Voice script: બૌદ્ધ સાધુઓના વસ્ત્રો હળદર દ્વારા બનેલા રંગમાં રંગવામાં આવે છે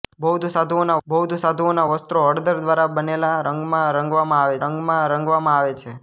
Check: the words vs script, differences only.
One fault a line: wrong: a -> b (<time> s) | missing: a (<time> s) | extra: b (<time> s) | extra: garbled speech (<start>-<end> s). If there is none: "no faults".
extra: બૌદ્ધ સાધુઓના (1.1 s)
extra: રંગમાં રંગવામાં આવે (4.6 s)